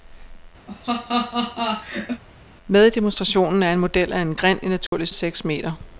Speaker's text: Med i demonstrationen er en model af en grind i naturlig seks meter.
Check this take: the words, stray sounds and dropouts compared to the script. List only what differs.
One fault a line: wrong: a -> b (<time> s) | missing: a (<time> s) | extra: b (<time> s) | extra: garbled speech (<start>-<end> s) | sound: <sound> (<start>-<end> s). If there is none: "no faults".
sound: laugh (0.7-2.2 s)
sound: dropout (4.9-4.9 s)